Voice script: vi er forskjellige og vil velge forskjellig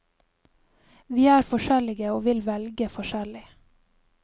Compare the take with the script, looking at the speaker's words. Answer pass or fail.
pass